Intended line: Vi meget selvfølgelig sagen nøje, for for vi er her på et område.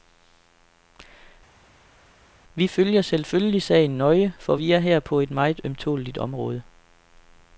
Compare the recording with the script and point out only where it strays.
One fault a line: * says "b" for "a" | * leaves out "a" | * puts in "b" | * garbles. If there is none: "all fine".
* says "følger" for "meget"
* leaves out "for"
* puts in "meget ømtåleligt"